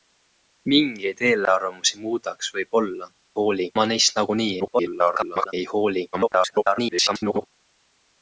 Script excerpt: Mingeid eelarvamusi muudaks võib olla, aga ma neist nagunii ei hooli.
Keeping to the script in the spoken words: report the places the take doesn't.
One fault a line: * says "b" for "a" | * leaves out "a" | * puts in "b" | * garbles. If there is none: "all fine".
* says "hooli" for "aga"
* garbles
* garbles